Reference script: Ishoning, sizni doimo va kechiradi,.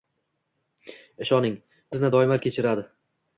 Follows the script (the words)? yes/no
yes